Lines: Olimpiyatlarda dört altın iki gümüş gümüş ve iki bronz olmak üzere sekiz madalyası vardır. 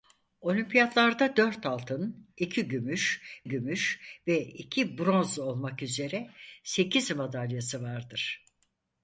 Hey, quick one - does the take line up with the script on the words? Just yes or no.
yes